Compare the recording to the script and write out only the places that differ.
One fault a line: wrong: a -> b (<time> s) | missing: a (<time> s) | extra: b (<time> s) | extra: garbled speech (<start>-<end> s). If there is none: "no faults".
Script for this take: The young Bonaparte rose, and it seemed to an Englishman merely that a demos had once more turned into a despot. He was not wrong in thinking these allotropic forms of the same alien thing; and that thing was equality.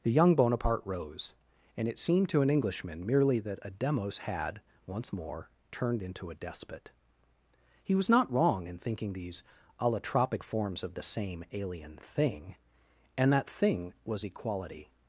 no faults